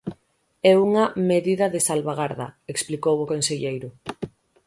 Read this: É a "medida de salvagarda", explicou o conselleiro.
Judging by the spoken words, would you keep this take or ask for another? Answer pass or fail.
fail